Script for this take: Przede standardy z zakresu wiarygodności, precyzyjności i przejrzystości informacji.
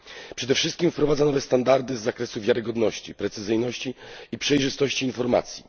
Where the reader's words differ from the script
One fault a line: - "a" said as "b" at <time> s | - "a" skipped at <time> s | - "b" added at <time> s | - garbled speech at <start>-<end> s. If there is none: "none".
- "wszystkim wprowadza nowe" added at 0.6 s